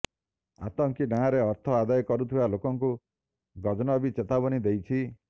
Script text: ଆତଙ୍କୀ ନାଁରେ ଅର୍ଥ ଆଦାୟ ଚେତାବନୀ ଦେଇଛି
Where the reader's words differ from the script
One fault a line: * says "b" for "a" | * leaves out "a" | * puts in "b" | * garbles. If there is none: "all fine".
* puts in "କରୁଥିବା ଲୋକଙ୍କୁ ଗଜନବୀ"